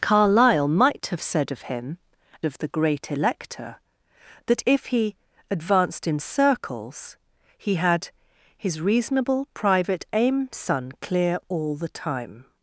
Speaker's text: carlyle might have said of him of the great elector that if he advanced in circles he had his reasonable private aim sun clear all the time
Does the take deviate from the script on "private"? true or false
false